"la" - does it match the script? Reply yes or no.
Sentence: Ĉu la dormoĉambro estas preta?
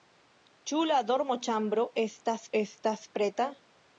yes